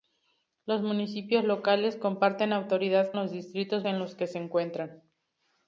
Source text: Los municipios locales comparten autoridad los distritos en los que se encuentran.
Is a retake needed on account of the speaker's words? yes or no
no